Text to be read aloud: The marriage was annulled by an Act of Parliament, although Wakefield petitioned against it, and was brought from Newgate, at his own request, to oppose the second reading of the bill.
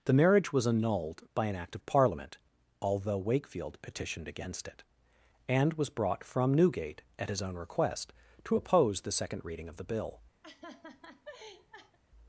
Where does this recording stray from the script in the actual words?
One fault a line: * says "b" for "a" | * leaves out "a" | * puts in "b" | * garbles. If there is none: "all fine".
all fine